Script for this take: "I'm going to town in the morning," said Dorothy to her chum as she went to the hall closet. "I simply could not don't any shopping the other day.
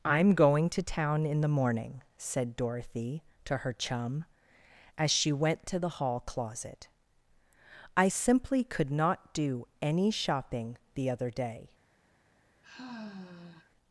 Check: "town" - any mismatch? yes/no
no